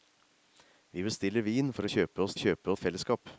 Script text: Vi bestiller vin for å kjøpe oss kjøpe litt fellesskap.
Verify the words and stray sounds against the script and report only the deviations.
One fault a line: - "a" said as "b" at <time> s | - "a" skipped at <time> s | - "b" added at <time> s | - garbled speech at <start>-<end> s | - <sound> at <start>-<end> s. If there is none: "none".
none